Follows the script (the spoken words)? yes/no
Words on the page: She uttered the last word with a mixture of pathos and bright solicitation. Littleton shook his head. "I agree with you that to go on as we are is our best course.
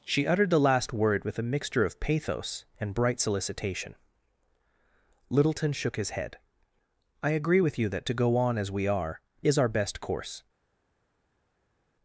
yes